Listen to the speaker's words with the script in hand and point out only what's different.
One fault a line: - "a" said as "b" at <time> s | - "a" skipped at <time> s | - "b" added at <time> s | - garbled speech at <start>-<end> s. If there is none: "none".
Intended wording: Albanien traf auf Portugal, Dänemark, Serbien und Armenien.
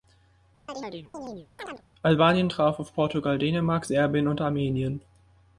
none